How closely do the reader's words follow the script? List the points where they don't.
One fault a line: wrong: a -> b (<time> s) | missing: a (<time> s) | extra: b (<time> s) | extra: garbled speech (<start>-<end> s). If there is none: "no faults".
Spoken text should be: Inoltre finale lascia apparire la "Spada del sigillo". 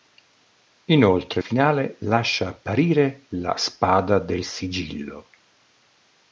no faults